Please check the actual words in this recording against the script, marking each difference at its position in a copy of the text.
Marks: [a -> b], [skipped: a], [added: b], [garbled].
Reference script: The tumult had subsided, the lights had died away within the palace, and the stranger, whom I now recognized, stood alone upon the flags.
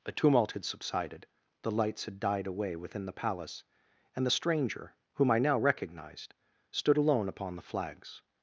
[The -> A] tumult had subsided, the lights had died away within the palace, and the stranger, whom I now recognized, stood alone upon the flags.